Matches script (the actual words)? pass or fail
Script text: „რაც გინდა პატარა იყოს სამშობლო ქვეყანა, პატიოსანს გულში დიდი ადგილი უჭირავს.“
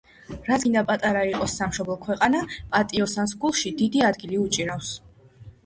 pass